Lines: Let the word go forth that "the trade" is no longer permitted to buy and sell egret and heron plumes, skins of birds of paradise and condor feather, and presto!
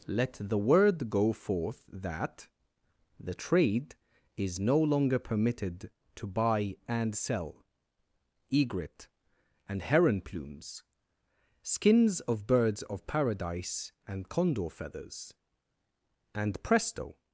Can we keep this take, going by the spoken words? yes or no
no